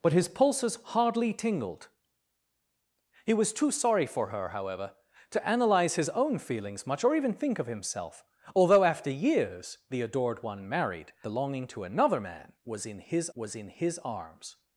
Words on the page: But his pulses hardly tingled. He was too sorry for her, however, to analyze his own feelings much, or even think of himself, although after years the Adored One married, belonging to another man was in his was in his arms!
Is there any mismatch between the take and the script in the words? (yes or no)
no